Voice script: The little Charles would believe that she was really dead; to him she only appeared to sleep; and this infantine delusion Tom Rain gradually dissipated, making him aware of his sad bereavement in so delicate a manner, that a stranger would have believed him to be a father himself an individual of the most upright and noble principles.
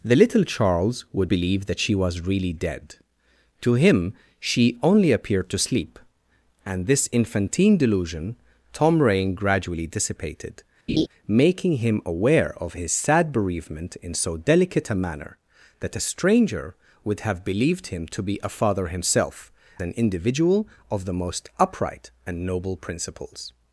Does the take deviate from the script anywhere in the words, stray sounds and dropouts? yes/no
yes